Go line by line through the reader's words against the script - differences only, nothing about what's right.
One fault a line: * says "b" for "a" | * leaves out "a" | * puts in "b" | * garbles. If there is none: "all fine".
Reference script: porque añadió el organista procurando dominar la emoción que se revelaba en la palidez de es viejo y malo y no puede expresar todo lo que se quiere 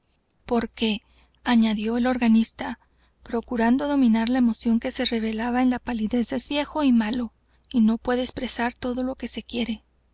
all fine